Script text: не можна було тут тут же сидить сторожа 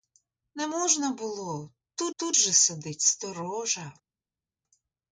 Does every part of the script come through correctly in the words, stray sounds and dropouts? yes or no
yes